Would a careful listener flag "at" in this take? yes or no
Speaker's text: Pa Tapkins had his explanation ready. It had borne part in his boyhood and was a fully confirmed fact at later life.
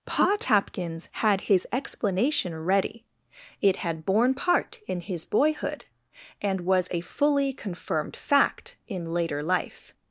yes